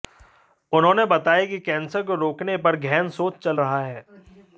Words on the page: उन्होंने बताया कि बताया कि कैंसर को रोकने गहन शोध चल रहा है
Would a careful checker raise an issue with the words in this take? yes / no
yes